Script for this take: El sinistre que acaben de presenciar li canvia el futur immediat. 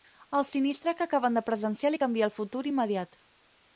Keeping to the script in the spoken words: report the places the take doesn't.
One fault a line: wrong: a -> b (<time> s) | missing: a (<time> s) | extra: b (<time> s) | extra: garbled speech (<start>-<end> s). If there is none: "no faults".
no faults